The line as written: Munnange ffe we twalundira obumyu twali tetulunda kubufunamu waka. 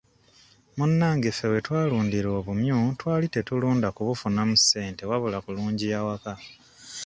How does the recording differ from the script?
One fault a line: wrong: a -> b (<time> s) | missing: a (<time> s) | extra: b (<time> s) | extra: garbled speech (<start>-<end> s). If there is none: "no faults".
extra: ssente wabula kulungiya (4.6 s)